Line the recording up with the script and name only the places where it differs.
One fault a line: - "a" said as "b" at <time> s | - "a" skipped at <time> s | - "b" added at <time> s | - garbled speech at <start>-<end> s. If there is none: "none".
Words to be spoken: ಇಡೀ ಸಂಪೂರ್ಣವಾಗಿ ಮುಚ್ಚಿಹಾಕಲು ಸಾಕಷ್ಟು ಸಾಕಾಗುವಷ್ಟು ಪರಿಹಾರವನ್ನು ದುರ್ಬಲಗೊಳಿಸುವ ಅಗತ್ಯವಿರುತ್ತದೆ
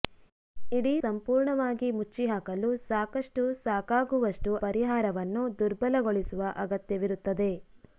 none